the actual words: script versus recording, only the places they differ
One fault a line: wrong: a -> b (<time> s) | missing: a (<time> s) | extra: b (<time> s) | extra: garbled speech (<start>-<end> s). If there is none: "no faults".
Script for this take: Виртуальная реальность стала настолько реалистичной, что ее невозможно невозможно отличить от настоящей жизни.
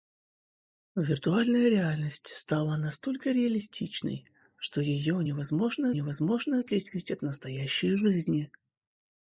no faults